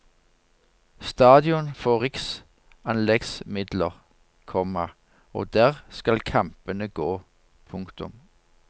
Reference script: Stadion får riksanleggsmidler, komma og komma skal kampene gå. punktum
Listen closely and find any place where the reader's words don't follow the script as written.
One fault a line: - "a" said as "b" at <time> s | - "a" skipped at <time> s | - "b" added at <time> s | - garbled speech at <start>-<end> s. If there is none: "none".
- "komma" said as "der" at 5.5 s